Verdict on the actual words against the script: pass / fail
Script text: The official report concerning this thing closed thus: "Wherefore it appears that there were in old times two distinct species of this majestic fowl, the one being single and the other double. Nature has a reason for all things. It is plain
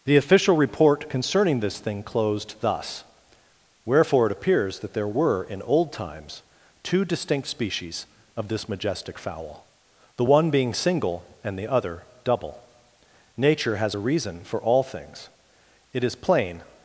pass